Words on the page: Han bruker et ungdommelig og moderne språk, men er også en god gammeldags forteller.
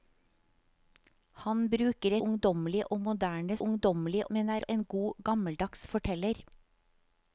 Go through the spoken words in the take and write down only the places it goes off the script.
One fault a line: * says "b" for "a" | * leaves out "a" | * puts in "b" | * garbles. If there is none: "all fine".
* leaves out "et"
* says "ungdommelig" for "språk"
* leaves out "også"